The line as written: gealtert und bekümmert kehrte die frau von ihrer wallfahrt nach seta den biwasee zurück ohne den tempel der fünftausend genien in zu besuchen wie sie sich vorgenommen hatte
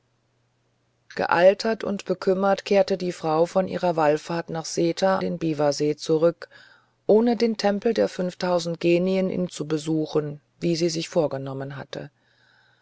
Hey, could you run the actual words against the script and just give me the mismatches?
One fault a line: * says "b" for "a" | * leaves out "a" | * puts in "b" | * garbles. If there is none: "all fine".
all fine